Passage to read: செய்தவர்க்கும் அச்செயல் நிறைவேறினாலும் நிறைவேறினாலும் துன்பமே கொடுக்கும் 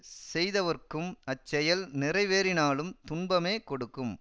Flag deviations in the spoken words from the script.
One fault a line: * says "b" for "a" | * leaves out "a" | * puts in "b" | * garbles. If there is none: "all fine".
* leaves out "நிறைவேறினாலும்"